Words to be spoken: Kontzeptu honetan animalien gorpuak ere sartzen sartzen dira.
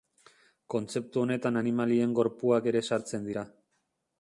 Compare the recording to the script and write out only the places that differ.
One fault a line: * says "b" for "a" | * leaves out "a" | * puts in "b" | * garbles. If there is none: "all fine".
* leaves out "sartzen"